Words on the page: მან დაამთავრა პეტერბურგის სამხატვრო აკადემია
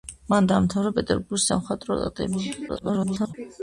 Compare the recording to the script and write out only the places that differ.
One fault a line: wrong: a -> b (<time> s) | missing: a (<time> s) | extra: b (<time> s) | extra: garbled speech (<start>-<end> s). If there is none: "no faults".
extra: garbled speech (2.7-3.3 s)